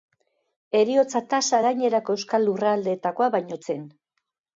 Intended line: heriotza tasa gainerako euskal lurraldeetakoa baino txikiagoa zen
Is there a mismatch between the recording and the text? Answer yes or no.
yes